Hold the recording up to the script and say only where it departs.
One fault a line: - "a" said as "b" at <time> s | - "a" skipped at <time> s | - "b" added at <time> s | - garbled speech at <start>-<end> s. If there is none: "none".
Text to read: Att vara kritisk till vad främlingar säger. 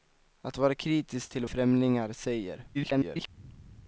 - "vad" skipped at 1.4 s
- garbled speech at 2.7-3.3 s